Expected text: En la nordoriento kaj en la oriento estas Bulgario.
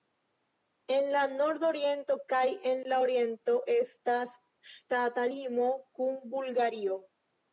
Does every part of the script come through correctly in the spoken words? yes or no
no